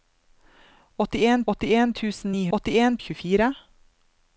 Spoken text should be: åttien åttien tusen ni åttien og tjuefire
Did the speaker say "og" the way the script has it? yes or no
yes